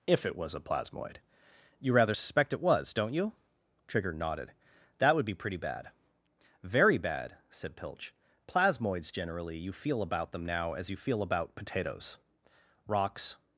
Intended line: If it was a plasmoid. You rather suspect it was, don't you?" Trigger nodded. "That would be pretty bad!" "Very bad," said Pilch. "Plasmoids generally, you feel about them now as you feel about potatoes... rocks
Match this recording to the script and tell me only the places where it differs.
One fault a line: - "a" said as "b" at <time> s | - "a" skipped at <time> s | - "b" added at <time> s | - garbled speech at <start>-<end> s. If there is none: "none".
none